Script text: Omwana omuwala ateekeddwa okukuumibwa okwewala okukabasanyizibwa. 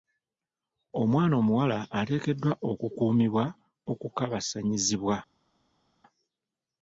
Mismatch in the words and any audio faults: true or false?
true